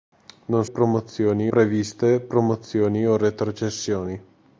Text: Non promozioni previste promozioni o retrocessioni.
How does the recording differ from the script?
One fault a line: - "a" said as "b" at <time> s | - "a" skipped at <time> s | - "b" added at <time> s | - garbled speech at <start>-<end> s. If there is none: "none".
none